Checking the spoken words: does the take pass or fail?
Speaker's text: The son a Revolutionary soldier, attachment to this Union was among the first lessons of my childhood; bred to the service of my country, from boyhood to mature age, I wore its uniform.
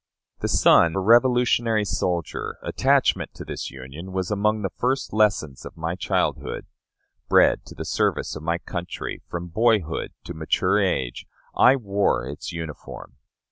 pass